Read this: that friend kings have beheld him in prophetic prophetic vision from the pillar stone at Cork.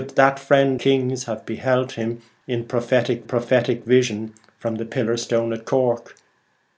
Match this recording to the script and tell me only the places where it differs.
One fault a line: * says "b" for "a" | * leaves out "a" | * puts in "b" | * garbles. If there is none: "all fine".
all fine